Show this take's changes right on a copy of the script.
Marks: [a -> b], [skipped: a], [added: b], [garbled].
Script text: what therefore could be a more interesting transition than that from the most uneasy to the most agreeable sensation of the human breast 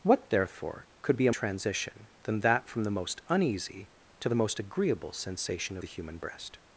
what therefore could be a [skipped: more interesting] transition than that from the most uneasy to the most agreeable sensation [skipped: of] the human breast